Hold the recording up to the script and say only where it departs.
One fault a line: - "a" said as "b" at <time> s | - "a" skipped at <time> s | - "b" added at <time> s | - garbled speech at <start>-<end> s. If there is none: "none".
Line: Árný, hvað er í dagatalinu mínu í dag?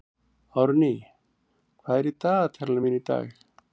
none